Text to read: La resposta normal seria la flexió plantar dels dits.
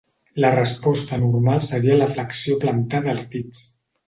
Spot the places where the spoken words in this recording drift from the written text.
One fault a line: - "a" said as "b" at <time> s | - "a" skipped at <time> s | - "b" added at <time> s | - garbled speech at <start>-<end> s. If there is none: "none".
none